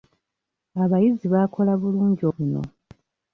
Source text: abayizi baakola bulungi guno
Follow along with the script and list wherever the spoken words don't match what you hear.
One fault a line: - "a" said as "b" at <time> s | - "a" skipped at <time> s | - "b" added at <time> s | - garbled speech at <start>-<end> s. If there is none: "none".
none